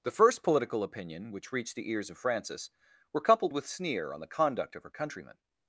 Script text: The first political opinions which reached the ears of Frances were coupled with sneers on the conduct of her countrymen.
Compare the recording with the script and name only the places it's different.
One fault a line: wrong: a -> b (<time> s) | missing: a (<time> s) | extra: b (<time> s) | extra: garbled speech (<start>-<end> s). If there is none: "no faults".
wrong: opinions -> opinion (0.8 s)
wrong: sneers -> sneer (3.7 s)